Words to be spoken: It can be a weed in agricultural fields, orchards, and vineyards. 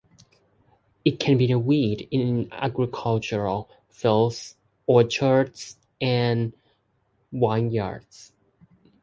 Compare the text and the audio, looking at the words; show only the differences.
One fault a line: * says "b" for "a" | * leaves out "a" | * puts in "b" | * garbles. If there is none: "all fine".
all fine